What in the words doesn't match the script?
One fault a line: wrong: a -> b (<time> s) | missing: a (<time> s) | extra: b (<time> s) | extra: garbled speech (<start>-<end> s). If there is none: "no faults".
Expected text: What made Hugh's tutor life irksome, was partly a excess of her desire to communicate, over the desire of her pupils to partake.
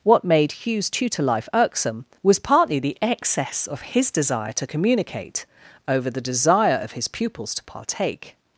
wrong: a -> the (2.8 s)
wrong: her -> his (3.8 s)
wrong: her -> his (6.9 s)